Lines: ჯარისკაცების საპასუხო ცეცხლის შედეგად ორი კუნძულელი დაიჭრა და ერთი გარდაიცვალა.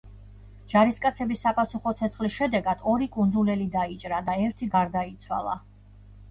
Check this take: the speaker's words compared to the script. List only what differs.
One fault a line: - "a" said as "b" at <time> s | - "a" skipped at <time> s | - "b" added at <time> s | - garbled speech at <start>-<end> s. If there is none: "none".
none